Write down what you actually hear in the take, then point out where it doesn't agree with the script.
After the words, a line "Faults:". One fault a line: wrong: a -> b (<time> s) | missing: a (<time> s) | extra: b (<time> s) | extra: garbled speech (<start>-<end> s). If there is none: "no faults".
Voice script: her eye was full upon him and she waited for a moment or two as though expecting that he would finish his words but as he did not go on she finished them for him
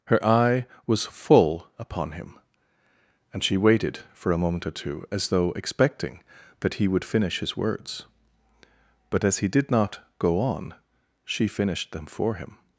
her eye was full upon him and she waited for a moment or two as though expecting that he would finish his words but as he did not go on she finished them for him
Faults:
no faults